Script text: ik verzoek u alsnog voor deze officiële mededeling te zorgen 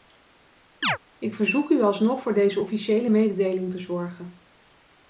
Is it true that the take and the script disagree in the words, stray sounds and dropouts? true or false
true